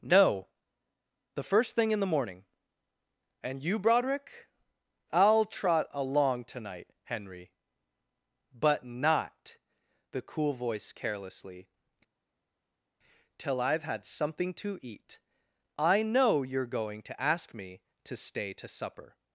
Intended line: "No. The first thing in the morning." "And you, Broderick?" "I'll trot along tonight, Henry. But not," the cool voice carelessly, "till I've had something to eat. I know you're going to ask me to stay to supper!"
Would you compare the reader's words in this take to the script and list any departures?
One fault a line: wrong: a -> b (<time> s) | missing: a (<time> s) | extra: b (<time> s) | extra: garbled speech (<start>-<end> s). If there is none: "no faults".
no faults